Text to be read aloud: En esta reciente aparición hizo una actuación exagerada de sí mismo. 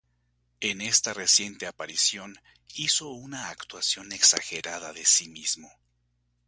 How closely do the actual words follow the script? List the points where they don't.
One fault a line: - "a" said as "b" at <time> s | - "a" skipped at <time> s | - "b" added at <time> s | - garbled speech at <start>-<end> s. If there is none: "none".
none